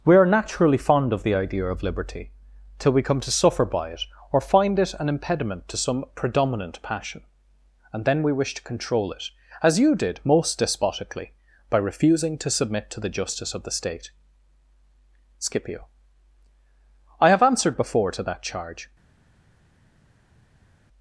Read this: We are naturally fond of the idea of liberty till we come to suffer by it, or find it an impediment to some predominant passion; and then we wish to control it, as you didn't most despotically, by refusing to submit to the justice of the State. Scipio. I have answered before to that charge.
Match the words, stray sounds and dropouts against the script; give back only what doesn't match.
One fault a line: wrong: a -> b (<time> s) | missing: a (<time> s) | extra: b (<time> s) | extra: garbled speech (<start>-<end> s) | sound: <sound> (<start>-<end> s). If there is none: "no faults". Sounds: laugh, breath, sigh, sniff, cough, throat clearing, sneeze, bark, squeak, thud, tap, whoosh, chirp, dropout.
wrong: didn't -> did (9.9 s)